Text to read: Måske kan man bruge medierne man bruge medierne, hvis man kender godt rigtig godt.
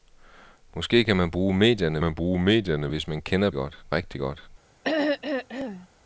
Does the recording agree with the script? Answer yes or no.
yes